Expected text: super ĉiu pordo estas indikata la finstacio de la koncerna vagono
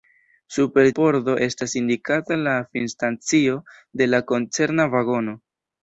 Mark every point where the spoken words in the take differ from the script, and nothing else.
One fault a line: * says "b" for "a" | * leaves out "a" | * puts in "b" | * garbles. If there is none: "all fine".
* leaves out "ĉiu"